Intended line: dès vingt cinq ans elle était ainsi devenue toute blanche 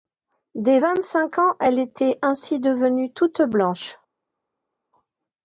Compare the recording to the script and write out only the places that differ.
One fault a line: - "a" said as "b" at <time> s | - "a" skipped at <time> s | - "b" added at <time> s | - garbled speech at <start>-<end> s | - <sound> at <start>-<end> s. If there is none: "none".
none